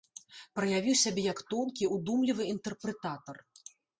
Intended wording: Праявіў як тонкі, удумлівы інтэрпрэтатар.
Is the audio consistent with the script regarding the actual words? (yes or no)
no